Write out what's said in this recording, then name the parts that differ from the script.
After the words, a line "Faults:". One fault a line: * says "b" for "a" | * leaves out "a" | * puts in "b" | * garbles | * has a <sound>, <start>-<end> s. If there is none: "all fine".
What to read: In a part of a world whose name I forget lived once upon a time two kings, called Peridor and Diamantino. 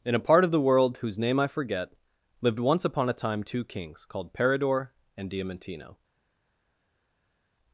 In a part of the world whose name I forget lived once upon a time two kings, called Peridor and Diamantino.
Faults:
* says "the" for "a"